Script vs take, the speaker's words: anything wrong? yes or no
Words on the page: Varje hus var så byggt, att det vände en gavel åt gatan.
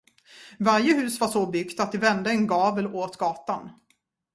no